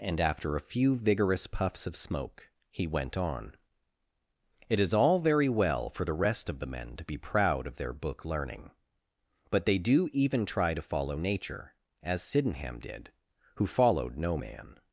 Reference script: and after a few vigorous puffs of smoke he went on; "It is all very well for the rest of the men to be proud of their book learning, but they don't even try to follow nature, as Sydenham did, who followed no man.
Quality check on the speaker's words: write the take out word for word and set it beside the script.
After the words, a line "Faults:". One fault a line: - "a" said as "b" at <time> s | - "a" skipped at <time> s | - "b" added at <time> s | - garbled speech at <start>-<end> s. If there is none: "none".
and after a few vigorous puffs of smoke he went on; "It is all very well for the rest of the men to be proud of their book learning, but they do even try to follow nature, as Sydenham did, who followed no man.
Faults:
- "don't" said as "do" at 9.8 s